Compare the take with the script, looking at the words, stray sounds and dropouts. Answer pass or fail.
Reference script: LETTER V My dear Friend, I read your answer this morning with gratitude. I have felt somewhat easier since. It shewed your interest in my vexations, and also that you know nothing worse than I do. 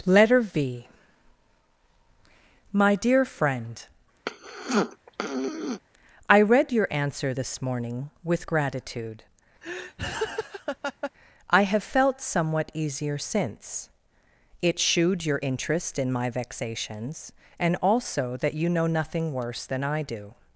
fail